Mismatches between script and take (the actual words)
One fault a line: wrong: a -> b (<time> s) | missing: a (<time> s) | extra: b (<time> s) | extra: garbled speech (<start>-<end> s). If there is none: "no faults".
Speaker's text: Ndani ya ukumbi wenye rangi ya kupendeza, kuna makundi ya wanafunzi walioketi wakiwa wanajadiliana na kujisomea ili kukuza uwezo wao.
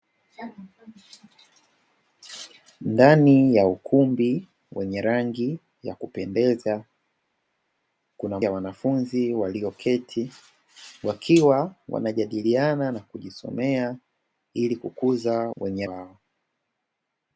missing: makundi (8.4 s)
wrong: uwezo -> wenye (15.6 s)